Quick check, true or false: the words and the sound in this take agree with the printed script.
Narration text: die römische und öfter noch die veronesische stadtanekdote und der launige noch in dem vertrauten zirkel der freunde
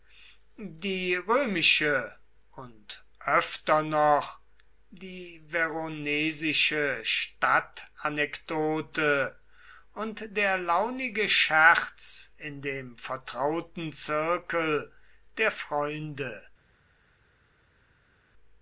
false